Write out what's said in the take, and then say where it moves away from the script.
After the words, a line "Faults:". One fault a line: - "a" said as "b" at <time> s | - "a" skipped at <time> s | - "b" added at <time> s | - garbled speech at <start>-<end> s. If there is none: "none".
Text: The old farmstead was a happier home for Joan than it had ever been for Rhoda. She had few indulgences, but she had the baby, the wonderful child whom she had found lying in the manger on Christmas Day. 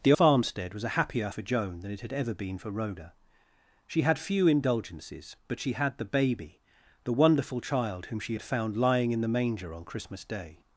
The farmstead was a happier for Joan than it had ever been for Rhoda. She had few indulgences, but she had the baby, the wonderful child whom she had found lying in the manger on Christmas Day.
Faults:
- "old" skipped at 0.1 s
- "home" skipped at 1.3 s